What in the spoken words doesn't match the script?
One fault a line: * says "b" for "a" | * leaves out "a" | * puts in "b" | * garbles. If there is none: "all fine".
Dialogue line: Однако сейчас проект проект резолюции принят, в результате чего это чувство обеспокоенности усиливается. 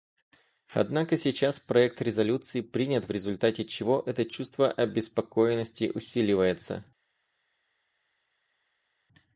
* leaves out "проект"